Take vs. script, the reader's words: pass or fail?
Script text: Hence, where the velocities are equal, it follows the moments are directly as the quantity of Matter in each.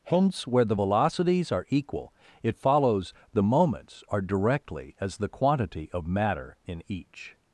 pass